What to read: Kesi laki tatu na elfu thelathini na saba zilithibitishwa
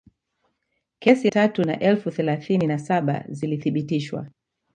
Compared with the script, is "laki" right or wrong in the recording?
wrong